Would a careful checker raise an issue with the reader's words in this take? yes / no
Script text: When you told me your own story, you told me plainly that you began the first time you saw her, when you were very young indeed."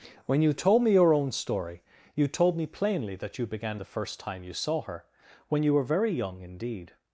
no